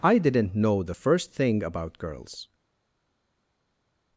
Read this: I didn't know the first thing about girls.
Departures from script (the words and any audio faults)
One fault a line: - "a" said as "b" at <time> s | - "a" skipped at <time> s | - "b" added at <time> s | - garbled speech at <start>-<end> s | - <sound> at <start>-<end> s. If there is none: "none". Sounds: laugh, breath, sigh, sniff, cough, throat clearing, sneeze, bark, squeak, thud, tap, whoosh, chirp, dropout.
none